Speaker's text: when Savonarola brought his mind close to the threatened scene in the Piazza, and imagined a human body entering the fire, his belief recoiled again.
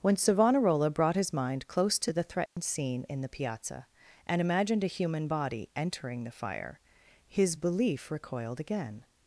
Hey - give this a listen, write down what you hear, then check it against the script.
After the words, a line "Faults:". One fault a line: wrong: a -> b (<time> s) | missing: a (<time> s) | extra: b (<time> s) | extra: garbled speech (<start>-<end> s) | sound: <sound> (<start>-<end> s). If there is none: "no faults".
when Savonarola brought his mind close to the threatened scene in the Piazza, and imagined a human body entering the fire, his belief recoiled again.
Faults:
sound: dropout (2.5-2.6 s)